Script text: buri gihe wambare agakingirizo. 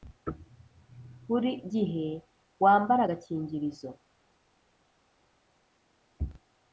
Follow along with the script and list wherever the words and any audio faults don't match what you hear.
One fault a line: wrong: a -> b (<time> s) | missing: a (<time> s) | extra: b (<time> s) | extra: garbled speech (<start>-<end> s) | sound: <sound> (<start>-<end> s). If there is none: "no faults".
no faults